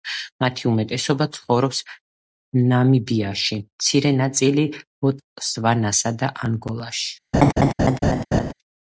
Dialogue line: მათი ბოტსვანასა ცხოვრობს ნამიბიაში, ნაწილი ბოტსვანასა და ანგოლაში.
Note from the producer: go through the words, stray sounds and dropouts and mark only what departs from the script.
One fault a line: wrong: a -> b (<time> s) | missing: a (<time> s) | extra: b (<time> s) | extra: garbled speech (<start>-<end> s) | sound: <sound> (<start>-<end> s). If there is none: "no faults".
wrong: ბოტსვანასა -> უმეტესობა (0.7 s)
extra: მცირე (3.6 s)
sound: laugh (7.3-8.5 s)